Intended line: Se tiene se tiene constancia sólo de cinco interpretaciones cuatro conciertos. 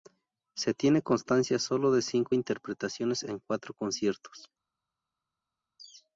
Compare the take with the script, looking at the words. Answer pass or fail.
fail